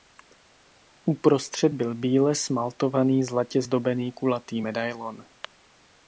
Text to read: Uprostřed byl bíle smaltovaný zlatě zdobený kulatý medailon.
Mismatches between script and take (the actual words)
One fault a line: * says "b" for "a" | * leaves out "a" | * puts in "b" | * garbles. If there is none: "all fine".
all fine